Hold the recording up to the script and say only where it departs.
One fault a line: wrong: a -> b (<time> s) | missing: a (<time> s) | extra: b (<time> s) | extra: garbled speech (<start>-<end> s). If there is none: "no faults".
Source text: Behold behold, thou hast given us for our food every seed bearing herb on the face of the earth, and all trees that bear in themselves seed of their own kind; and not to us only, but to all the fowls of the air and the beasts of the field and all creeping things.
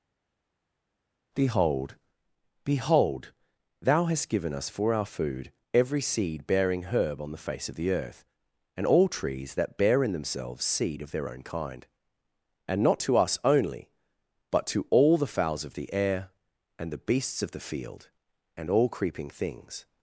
no faults